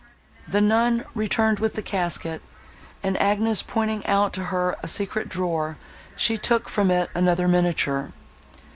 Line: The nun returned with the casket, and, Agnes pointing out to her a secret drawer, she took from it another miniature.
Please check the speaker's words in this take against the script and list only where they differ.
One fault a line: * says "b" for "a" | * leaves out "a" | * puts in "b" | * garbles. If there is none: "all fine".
all fine